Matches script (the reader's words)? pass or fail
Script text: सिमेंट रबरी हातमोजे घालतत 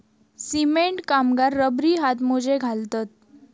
fail